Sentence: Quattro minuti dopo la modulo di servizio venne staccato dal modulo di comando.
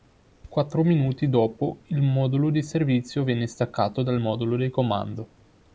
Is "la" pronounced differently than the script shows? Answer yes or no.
yes